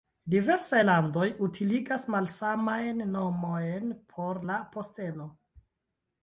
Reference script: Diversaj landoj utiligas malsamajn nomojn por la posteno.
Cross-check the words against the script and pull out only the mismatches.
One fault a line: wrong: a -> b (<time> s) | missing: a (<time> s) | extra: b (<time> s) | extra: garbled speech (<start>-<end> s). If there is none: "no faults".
no faults